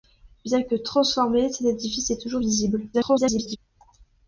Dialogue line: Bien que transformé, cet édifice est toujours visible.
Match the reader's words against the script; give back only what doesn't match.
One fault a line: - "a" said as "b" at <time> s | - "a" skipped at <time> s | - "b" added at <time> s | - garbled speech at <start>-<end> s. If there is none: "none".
- garbled speech at 2.9-3.6 s